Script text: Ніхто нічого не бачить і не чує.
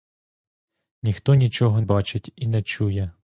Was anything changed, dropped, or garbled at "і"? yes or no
no